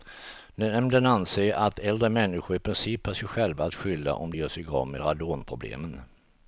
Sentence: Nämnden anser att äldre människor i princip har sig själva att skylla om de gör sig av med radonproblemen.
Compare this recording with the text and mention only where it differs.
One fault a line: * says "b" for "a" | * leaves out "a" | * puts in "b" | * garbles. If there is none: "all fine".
all fine